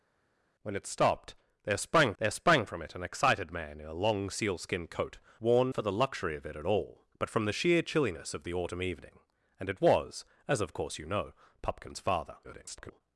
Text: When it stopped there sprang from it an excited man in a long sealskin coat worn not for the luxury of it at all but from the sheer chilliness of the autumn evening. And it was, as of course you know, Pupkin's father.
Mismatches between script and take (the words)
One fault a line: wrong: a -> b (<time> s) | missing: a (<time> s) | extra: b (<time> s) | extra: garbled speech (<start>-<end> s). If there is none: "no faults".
extra: there sprang (2.2 s)
missing: not (5.7 s)
extra: garbled speech (12.4-13.0 s)